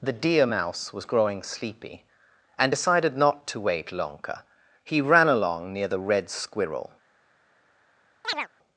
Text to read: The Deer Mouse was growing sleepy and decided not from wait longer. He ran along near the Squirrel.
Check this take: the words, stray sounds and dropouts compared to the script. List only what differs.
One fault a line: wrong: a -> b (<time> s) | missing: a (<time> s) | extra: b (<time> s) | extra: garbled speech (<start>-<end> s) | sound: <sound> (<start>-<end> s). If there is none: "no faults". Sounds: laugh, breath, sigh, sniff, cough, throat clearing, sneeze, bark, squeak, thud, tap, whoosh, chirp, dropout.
wrong: from -> to (3.5 s)
extra: Red (6.0 s)
sound: chirp (8.2-8.5 s)